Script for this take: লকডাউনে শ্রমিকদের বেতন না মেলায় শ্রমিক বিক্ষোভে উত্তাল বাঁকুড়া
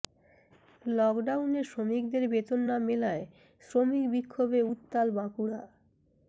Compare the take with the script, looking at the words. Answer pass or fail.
pass